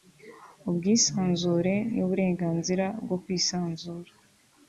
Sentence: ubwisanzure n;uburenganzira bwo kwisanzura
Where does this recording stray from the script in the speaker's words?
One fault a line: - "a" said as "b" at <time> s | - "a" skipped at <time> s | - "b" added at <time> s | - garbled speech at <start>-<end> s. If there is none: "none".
none